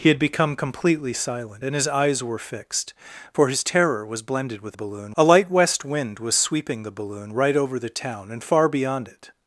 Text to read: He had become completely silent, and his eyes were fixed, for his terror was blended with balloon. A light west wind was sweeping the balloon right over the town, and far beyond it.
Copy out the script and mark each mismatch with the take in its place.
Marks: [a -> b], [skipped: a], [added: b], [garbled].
He had become completely silent, and his eyes were fixed, for his terror was blended with balloon. A light west wind was sweeping the balloon right over the town, and far beyond it.